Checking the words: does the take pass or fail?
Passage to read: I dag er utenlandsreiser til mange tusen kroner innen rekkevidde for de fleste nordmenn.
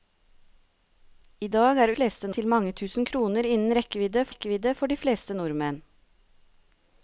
fail